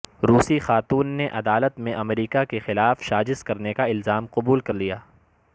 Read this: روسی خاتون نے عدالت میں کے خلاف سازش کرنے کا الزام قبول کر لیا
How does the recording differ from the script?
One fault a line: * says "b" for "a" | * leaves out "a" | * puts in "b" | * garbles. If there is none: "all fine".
* puts in "امریکہ"